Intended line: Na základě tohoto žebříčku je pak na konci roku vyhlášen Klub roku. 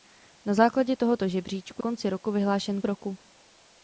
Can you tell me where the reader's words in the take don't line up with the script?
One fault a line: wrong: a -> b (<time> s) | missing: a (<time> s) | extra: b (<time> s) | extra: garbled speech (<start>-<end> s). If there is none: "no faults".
missing: je pak na (1.8 s)
missing: Klub (2.8 s)